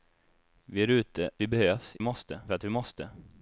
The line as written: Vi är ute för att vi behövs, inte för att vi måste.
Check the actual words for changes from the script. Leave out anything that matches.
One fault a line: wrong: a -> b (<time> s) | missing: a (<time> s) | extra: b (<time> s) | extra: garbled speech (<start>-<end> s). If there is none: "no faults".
missing: för att (1.3 s)
wrong: inte -> måste (2.0 s)